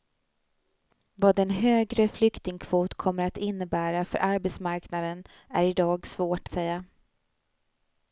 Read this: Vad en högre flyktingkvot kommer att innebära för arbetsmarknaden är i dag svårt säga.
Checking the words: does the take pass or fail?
pass